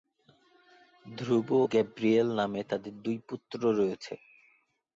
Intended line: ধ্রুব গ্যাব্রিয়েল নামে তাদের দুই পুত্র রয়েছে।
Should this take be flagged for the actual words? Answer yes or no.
no